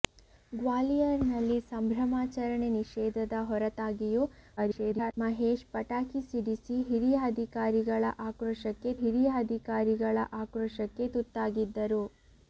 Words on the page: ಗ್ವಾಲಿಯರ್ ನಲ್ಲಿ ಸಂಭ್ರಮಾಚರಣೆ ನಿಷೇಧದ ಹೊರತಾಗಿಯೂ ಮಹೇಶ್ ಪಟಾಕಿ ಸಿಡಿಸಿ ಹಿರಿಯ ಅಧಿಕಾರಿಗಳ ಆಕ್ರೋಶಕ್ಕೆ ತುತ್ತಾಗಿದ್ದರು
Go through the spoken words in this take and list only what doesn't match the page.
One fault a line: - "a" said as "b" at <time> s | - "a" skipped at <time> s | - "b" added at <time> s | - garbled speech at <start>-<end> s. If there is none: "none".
- garbled speech at 4.6-5.1 s
- "ಹಿರಿಯ ಅಧಿಕಾರಿಗಳ ಆಕ್ರೋಶಕ್ಕೆ" added at 9.0 s